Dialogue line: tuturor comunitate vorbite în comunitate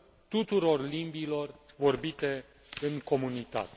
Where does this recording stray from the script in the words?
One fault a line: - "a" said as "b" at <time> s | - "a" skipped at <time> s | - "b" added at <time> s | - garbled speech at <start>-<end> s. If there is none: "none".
- "comunitate" said as "limbilor" at 0.9 s